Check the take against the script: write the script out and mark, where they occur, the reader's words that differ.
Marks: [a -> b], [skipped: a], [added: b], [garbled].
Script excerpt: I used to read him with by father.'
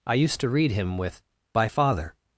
I used to read him with by father.'